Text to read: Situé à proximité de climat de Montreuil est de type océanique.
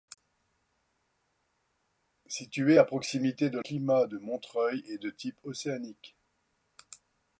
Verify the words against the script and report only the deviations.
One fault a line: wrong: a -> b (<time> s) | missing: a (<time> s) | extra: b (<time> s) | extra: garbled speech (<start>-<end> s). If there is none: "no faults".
no faults